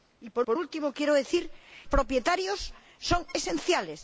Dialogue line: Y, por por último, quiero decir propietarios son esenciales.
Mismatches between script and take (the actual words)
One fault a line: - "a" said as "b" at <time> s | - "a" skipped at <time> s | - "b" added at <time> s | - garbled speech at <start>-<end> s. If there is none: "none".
none